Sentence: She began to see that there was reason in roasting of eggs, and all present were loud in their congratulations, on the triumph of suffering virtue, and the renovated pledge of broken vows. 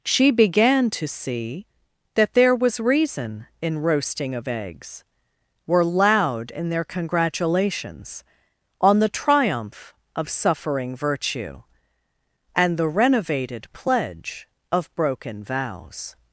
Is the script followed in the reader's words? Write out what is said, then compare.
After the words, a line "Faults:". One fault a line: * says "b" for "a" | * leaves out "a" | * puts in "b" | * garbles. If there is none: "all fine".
She began to see that there was reason in roasting of eggs, were loud in their congratulations, on the triumph of suffering virtue, and the renovated pledge of broken vows.
Faults:
* leaves out "and all present"